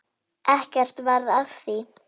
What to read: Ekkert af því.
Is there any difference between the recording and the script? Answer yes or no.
yes